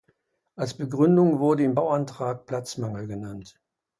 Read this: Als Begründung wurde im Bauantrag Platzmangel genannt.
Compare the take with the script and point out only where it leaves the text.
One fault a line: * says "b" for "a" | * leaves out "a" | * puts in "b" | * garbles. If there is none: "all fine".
all fine